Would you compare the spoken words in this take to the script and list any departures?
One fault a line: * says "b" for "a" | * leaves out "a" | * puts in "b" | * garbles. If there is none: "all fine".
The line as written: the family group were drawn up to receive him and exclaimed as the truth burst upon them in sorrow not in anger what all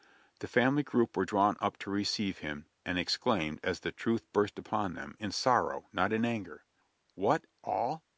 all fine